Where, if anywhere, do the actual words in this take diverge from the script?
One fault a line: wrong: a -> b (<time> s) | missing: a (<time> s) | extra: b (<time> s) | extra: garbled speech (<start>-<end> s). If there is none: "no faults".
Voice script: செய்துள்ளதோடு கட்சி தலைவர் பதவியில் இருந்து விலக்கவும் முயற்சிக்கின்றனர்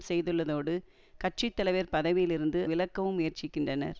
no faults